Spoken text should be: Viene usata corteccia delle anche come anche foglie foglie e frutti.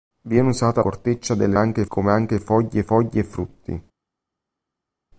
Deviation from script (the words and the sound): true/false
false